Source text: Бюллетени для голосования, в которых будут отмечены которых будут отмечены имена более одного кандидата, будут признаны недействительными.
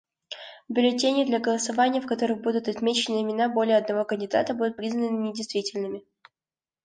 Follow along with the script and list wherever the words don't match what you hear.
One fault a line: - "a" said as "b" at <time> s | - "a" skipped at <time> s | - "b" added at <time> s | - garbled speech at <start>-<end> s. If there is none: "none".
- "которых будут отмечены" skipped at 3.2 s